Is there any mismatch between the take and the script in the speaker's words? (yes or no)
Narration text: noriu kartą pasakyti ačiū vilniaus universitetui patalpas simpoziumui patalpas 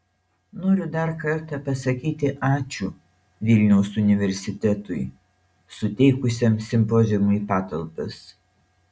yes